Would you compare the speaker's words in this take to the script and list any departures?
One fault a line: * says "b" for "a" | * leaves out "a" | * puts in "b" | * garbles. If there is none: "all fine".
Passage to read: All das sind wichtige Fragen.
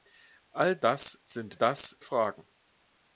* says "das" for "wichtige"